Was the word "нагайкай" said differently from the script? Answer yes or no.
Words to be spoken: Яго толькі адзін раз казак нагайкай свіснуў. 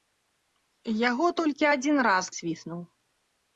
yes